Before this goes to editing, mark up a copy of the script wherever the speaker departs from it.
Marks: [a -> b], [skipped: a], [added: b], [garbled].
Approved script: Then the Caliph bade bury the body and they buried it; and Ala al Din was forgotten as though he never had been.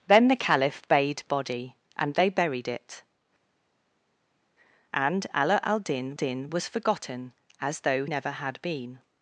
Then the Caliph bade [skipped: bury the] body and they buried it; and Ala al Din [added: Din] was forgotten as though [skipped: he] never had been.